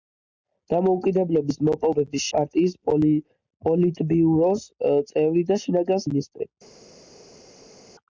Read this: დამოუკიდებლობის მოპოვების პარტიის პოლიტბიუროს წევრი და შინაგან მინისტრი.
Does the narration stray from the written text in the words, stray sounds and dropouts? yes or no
no